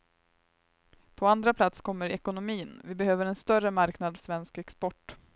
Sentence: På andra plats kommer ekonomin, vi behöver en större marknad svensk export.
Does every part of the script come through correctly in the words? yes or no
yes